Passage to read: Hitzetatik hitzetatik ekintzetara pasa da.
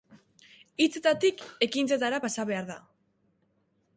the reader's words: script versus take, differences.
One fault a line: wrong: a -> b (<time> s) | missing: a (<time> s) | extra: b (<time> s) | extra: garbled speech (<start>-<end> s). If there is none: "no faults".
missing: hitzetatik (1.4 s)
extra: behar (2.5 s)